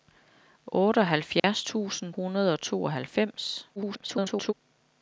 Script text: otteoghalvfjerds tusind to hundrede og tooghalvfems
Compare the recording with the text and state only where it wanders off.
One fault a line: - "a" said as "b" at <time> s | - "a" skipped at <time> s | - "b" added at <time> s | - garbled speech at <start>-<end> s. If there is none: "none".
- "to" skipped at 2.1 s
- garbled speech at 3.8-4.5 s